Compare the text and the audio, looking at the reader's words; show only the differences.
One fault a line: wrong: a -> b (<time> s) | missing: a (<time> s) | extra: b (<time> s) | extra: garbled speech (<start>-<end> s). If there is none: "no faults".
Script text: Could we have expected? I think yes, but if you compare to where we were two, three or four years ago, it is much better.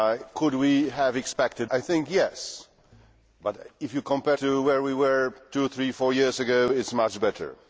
no faults